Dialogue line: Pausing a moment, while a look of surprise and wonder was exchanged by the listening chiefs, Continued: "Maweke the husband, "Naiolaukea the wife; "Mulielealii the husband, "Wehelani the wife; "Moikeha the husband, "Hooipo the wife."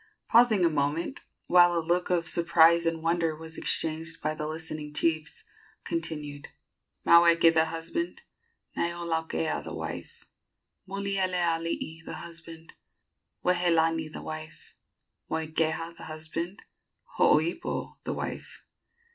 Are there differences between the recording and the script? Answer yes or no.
no